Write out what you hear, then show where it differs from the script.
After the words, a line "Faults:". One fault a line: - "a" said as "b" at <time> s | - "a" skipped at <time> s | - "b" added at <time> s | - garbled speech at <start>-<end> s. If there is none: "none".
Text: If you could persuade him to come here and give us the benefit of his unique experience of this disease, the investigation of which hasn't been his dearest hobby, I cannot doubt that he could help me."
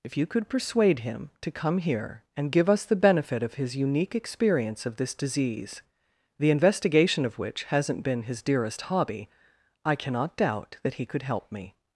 If you could persuade him to come here and give us the benefit of his unique experience of this disease, the investigation of which hasn't been his dearest hobby, I cannot doubt that he could help me."
Faults:
none